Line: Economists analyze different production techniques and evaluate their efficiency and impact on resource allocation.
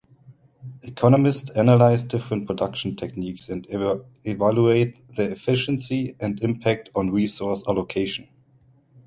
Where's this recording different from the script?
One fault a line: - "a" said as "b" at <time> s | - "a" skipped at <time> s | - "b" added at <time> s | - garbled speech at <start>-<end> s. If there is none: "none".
none